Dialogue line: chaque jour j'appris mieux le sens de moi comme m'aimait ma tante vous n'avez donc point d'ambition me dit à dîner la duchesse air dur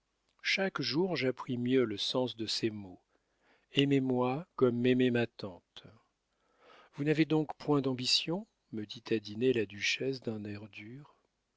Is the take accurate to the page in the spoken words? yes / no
no